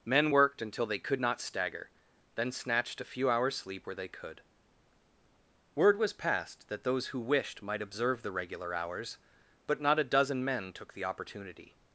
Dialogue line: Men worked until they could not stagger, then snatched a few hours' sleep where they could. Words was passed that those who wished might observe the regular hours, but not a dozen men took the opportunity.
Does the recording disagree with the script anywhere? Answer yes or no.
yes